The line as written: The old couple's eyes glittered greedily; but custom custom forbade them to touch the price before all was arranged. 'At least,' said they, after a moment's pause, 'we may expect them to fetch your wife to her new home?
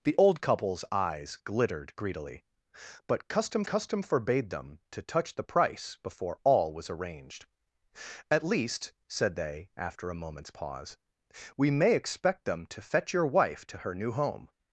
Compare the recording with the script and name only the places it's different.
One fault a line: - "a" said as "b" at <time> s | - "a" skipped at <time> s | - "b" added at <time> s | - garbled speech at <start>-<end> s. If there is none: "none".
none